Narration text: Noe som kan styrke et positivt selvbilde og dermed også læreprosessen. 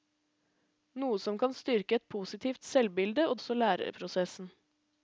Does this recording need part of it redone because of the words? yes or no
yes